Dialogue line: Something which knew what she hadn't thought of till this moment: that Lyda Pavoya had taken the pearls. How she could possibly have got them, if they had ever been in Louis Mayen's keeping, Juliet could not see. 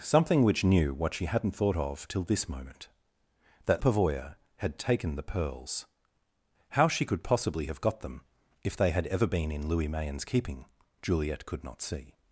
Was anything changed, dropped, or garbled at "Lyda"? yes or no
yes